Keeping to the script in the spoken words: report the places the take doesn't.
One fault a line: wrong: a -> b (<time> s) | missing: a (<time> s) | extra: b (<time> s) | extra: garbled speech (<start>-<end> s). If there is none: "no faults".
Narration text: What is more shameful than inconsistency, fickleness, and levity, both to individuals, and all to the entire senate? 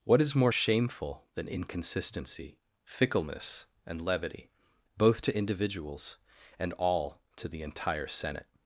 no faults